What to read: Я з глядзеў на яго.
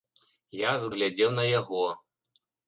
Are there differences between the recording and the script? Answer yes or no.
no